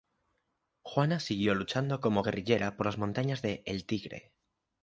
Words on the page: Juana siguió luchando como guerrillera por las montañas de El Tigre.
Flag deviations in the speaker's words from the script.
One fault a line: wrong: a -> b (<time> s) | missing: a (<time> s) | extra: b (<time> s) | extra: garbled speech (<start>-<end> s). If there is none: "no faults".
no faults